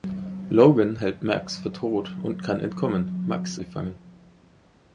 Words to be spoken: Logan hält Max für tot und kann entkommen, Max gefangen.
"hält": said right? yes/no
yes